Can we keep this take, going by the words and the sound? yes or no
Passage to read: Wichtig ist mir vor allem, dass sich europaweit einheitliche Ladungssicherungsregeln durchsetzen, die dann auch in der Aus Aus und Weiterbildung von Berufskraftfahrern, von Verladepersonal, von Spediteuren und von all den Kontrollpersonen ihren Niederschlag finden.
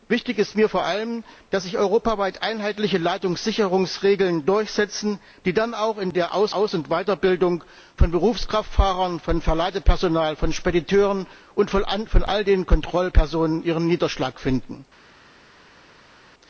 yes